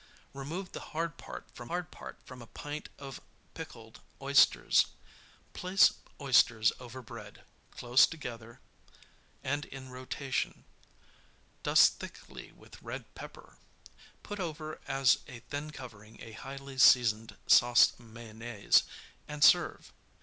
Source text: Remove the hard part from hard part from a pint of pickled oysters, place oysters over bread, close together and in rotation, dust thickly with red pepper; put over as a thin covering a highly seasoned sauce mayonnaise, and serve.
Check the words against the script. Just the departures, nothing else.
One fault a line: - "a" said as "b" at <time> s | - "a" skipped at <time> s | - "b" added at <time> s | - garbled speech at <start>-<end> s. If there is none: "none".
none